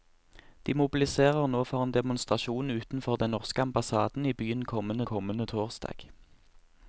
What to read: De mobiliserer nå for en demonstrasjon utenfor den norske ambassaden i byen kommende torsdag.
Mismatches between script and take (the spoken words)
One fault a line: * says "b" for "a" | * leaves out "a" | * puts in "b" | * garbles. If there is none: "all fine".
* puts in "kommende"